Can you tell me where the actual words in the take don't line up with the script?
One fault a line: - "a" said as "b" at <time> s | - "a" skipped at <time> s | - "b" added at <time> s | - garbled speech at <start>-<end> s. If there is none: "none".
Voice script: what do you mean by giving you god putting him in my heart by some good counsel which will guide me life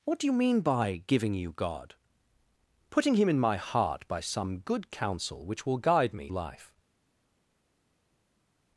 none